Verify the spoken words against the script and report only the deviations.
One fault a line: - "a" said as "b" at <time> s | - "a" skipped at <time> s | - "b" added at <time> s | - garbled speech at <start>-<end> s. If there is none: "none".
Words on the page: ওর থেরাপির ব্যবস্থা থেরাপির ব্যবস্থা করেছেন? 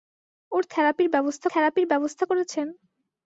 none